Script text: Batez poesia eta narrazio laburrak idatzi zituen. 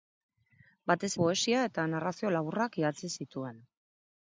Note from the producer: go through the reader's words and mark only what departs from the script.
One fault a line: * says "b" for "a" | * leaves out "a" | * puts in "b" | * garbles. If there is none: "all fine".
all fine